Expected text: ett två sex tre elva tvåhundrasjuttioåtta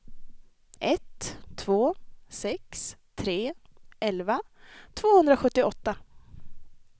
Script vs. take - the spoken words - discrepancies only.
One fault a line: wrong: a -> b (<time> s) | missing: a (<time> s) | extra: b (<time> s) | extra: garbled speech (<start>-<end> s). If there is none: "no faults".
no faults